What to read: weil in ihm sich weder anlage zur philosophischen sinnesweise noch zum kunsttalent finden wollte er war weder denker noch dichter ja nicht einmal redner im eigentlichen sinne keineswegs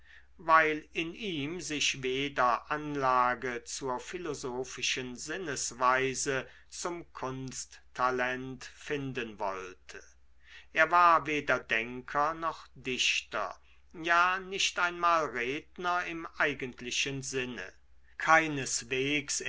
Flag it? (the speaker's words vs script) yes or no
yes